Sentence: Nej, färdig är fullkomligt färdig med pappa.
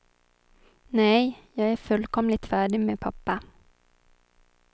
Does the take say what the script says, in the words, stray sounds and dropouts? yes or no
no